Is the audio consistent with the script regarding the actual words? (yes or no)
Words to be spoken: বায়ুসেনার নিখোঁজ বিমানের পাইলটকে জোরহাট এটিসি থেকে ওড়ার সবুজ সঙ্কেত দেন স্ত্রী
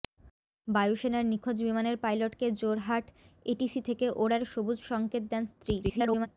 no